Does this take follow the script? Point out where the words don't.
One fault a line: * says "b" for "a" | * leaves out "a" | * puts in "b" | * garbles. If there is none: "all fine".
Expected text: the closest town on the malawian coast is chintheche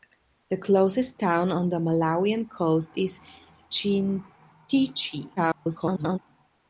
* garbles